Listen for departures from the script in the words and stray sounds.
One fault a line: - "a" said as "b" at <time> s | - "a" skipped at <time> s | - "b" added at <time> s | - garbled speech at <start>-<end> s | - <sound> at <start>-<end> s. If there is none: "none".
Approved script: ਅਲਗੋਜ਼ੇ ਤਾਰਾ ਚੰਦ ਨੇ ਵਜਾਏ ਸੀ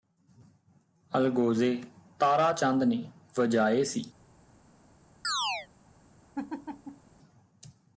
- chirp at 5.2-5.7 s
- laugh at 6.3-7.1 s